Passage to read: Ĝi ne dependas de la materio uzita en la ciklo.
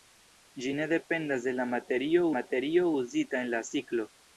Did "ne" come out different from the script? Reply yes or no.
no